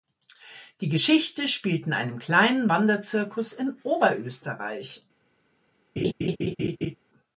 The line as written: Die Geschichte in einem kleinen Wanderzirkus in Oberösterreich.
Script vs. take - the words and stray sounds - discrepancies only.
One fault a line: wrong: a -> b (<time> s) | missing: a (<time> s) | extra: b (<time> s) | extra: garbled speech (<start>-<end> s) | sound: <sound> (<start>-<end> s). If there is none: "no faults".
extra: spielt (1.5 s)
sound: laugh (6.0-7.0 s)